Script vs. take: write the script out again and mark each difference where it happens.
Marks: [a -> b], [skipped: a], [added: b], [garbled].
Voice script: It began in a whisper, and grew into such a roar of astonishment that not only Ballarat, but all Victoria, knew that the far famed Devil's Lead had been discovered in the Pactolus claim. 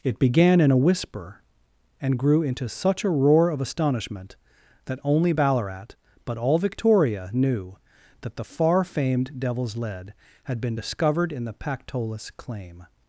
It began in a whisper, and grew into such a roar of astonishment that [skipped: not] only Ballarat, but all Victoria, knew that the far famed Devil's Lead had been discovered in the Pactolus claim.